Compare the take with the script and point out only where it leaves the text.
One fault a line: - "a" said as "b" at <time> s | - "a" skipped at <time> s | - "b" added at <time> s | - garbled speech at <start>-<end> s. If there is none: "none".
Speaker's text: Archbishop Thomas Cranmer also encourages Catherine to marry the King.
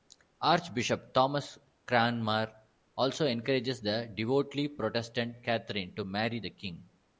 - "the devoutly Protestant" added at 3.8 s